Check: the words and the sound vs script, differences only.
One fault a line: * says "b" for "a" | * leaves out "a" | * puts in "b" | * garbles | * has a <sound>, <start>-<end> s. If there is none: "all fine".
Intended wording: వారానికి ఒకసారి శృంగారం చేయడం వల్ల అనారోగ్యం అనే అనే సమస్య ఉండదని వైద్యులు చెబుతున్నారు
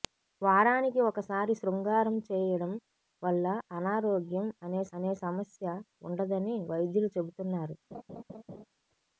* has a laugh, 7.9-8.7 s